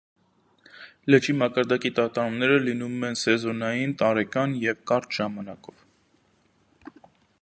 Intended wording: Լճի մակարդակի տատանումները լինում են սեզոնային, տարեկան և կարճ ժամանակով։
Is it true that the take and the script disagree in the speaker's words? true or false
false